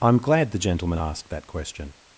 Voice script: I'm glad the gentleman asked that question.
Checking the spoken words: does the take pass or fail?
pass